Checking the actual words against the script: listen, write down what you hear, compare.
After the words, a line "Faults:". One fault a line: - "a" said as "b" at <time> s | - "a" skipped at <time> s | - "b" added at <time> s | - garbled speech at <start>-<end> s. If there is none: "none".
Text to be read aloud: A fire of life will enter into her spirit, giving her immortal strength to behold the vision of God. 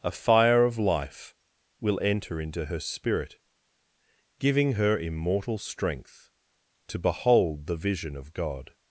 A fire of life will enter into her spirit, giving her immortal strength to behold the vision of God.
Faults:
none